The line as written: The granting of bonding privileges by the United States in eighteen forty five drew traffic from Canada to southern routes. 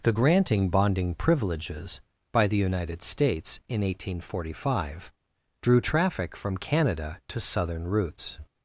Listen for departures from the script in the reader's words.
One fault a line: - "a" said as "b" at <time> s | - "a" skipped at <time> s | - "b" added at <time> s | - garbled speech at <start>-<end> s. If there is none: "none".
- "of" skipped at 0.7 s